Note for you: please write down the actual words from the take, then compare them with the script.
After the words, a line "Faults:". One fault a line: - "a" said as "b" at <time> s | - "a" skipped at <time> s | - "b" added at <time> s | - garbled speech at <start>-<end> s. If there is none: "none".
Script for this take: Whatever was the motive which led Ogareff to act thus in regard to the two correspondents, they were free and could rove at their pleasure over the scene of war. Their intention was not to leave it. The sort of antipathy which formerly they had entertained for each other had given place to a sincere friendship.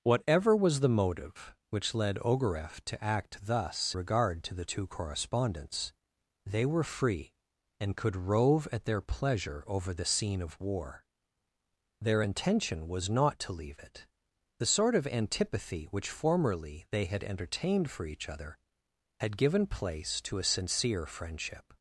Whatever was the motive which led Ogareff to act thus regard to the two correspondents, they were free and could rove at their pleasure over the scene of war. Their intention was not to leave it. The sort of antipathy which formerly they had entertained for each other had given place to a sincere friendship.
Faults:
- "in" skipped at 4.0 s